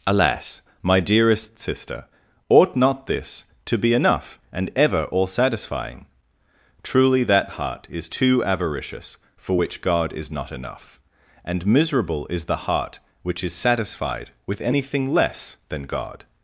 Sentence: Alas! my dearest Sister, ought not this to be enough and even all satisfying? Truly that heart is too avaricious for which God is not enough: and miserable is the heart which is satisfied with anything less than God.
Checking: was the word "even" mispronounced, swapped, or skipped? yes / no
yes